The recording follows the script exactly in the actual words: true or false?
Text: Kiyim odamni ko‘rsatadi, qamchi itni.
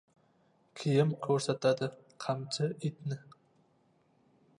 false